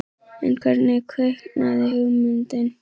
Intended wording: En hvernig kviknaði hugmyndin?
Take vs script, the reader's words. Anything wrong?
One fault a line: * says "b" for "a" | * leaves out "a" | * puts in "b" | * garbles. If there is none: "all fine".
all fine